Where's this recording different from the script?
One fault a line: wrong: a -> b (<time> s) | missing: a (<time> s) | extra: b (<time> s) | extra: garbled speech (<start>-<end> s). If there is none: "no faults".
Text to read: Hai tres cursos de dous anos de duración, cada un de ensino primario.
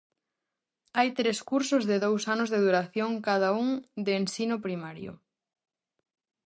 no faults